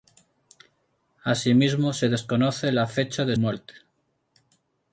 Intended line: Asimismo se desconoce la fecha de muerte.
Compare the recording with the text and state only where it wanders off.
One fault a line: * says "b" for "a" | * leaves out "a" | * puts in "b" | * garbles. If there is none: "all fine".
all fine